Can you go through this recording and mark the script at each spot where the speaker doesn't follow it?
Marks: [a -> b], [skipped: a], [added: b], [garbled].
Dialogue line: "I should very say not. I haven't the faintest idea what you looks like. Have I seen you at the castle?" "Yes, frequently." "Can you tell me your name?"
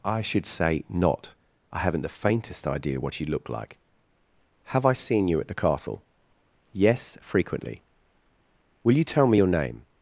"I should [skipped: very] say not. I haven't the faintest idea what you [looks -> look] like. Have I seen you at the castle?" "Yes, frequently." ["Can -> Will] you tell me your name?"